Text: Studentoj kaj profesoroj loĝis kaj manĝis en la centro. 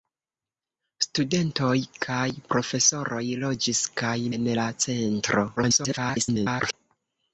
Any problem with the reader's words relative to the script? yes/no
yes